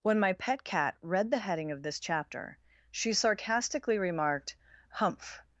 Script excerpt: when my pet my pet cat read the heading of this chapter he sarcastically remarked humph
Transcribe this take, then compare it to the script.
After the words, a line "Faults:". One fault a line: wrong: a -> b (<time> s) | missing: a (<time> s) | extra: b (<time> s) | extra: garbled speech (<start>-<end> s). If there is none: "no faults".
when my pet cat read the heading of this chapter she sarcastically remarked humph
Faults:
missing: my pet (0.6 s)
wrong: he -> she (2.9 s)